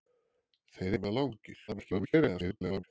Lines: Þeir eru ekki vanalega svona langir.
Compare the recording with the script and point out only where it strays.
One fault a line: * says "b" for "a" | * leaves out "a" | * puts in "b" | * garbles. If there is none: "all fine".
* leaves out "eru ekki vanalega"
* garbles